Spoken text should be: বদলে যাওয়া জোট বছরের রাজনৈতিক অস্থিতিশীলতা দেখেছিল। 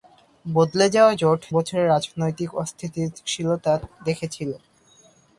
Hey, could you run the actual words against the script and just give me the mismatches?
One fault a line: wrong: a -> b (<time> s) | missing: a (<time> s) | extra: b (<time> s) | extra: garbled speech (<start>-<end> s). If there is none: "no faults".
no faults